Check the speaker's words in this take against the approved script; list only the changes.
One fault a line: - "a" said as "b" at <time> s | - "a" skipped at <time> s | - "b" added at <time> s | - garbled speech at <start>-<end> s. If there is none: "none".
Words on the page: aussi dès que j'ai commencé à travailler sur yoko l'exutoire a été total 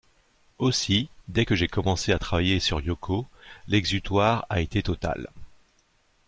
none